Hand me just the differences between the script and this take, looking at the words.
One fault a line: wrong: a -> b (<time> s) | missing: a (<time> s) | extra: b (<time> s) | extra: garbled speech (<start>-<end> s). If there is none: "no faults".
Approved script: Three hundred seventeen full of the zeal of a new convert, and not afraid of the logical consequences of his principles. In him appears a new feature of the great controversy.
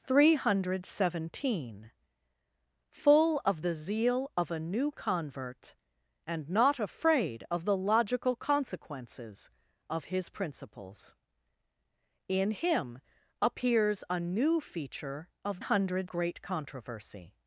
wrong: the -> hundred (15.6 s)